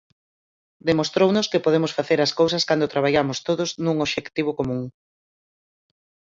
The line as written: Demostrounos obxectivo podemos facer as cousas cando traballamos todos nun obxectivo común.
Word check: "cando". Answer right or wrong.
right